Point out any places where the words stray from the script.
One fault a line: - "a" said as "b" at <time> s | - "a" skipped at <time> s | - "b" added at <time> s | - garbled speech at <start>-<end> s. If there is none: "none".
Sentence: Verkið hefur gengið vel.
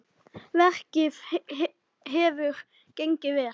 none